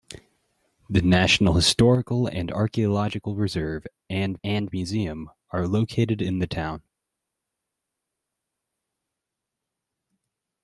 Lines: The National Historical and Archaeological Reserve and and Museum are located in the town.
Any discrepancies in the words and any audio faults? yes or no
no